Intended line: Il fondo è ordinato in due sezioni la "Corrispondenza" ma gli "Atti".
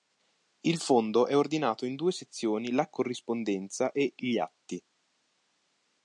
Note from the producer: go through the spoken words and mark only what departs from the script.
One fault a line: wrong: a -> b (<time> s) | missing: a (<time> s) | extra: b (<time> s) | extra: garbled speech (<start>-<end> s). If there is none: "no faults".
wrong: ma -> e (3.9 s)